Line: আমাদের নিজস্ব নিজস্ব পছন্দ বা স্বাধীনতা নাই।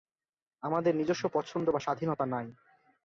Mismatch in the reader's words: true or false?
true